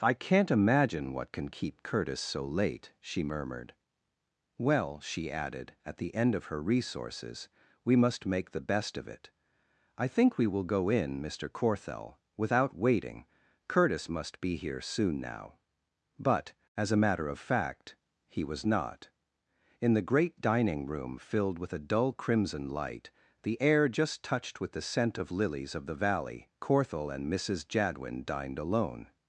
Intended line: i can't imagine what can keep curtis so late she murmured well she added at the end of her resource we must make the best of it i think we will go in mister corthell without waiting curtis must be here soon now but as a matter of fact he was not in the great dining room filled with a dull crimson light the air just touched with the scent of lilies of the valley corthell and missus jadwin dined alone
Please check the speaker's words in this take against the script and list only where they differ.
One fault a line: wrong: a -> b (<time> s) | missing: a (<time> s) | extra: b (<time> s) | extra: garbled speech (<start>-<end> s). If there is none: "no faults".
wrong: resource -> resources (6.6 s)